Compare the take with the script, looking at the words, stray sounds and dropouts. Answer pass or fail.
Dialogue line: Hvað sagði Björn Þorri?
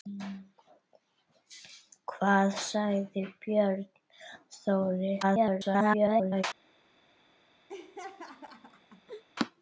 fail